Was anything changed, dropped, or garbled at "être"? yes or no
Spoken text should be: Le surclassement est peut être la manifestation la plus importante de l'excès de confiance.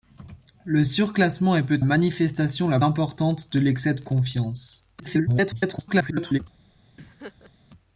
yes